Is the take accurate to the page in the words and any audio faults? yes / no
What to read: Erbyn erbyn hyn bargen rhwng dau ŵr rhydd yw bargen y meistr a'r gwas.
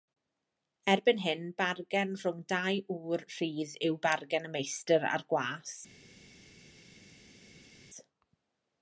no